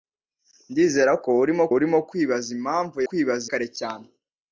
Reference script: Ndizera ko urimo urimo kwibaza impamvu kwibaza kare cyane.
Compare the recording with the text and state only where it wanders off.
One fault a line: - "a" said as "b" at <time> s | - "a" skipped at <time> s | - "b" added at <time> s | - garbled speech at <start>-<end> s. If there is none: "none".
none